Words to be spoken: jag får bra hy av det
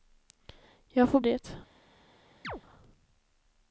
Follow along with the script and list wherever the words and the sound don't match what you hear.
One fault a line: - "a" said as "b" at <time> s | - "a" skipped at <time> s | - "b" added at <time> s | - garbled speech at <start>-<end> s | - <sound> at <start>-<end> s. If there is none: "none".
- "bra hy av" skipped at 1.2 s
- chirp at 2.4-2.6 s